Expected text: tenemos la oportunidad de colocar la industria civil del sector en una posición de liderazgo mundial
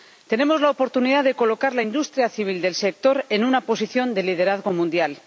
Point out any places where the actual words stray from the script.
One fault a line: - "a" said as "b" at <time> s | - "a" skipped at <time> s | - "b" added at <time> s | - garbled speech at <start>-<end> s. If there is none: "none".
none